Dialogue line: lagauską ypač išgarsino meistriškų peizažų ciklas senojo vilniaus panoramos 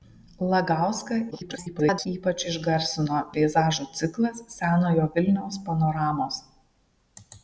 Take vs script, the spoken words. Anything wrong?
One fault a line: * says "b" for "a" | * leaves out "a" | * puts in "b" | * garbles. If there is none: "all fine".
* garbles
* leaves out "meistriškų"